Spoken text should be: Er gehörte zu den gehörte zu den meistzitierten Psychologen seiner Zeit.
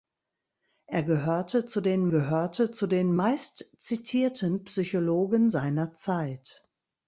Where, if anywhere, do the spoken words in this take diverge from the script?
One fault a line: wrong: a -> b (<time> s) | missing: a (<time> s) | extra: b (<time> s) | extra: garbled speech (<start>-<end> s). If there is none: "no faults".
no faults